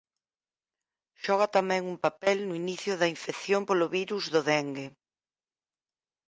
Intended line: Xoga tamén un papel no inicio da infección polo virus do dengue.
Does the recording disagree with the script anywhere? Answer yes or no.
no